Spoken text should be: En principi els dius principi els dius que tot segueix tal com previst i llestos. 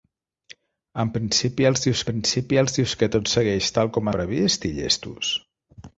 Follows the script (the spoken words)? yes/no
yes